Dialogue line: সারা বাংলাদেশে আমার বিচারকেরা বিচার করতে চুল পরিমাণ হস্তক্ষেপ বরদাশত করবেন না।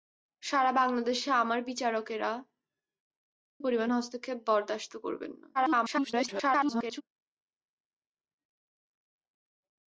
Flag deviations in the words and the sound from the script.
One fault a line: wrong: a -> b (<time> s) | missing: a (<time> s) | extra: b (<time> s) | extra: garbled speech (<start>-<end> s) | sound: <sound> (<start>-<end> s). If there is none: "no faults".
missing: বিচার করতে চুল (2.3 s)
extra: garbled speech (5.5-7.0 s)